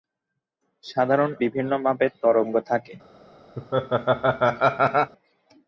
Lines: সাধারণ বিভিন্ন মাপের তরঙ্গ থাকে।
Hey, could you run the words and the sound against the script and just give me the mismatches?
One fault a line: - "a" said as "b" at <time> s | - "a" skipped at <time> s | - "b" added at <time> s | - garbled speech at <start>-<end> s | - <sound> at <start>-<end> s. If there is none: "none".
- laugh at 3.6-5.1 s